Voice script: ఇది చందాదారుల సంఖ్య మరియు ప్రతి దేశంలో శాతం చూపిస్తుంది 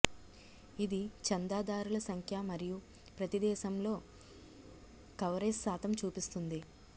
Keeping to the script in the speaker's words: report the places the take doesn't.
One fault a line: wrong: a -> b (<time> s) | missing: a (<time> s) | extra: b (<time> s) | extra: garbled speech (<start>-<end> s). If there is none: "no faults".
extra: కవరేజ్ (5.2 s)